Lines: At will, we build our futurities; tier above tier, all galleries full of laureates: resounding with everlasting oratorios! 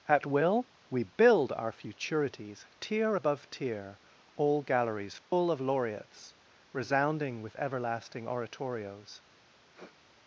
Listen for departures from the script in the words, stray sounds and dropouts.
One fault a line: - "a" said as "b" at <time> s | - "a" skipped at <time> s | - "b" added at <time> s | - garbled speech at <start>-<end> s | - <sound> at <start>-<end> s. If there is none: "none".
- dropout at 5.2-5.3 s
- sniff at 9.7-10.0 s